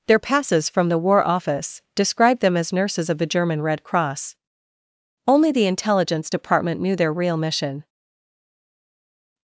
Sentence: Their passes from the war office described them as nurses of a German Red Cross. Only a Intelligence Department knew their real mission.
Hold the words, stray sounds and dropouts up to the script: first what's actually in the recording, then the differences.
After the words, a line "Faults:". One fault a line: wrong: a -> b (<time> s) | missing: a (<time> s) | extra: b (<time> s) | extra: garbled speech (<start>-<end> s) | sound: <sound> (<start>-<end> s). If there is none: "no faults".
Their passes from the war office described them as nurses of the German Red Cross. Only the Intelligence Department knew their real mission.
Faults:
wrong: a -> the (3.2 s)
wrong: a -> the (5.5 s)